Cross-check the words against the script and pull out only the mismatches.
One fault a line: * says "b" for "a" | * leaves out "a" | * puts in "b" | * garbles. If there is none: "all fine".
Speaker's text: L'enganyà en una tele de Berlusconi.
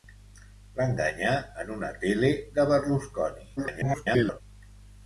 * garbles